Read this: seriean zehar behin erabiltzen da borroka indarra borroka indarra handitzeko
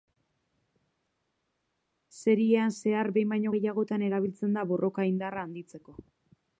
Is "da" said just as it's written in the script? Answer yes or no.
yes